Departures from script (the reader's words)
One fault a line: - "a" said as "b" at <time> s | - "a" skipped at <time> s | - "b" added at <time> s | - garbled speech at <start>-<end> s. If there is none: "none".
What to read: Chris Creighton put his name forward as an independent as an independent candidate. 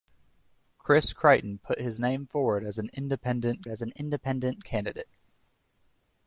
none